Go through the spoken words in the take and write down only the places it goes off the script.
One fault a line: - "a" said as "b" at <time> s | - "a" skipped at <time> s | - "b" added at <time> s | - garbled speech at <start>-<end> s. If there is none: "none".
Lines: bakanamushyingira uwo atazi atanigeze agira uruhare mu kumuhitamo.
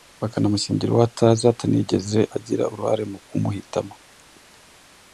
none